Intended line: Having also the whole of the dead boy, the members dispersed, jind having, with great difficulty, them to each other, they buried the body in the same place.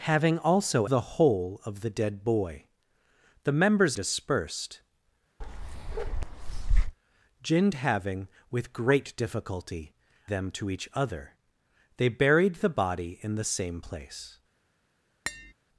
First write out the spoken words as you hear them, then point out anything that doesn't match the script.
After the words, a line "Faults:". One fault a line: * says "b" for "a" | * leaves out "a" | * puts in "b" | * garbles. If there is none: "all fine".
Having also the whole of the dead boy, the members dispersed, jind having, with great difficulty, them to each other, they buried the body in the same place.
Faults:
all fine